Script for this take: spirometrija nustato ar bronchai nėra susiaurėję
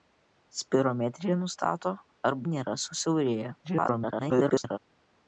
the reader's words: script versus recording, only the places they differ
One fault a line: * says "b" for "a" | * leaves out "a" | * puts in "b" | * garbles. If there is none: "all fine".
* leaves out "bronchai"
* garbles